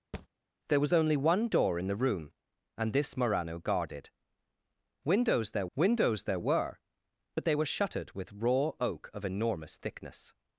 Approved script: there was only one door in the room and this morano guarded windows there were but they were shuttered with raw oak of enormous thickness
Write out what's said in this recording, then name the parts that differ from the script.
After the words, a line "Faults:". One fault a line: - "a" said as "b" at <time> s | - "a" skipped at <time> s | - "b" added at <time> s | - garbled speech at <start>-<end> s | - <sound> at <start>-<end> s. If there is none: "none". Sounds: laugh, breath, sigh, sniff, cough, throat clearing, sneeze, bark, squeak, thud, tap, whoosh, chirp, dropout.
there was only one door in the room and this morano guarded windows there windows there were but they were shuttered with raw oak of enormous thickness
Faults:
- thud at 0.1-0.3 s
- "windows there" added at 5.8 s